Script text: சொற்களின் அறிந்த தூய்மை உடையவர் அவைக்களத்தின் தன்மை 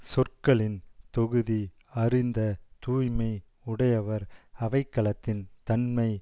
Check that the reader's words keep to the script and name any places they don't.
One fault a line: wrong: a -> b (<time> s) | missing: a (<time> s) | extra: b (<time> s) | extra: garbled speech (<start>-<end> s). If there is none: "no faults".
extra: தொகுதி (1.1 s)